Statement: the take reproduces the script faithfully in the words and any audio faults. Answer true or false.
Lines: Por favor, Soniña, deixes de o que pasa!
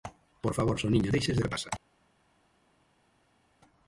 true